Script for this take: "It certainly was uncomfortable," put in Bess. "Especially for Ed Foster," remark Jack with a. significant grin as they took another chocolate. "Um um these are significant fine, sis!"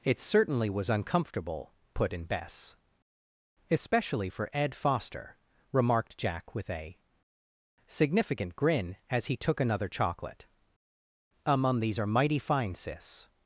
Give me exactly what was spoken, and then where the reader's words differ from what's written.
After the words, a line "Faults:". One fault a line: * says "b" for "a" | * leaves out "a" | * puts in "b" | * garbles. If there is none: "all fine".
"It certainly was uncomfortable," put in Bess. "Especially for Ed Foster," remarked Jack with a. significant grin as he took another chocolate. "Um um these are mighty fine, sis!"
Faults:
* says "remarked" for "remark"
* says "he" for "they"
* says "mighty" for "significant"